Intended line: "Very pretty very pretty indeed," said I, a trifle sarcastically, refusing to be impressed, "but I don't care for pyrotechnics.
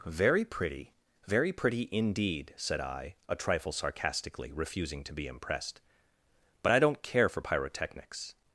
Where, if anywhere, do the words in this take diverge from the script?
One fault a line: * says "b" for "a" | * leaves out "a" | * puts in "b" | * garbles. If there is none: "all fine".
all fine